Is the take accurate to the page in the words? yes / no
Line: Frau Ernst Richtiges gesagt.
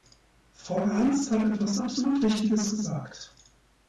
no